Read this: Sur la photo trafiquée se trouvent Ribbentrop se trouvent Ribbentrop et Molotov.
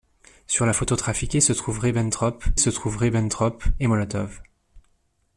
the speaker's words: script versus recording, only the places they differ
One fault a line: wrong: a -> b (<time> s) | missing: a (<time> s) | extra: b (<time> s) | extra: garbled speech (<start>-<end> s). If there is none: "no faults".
no faults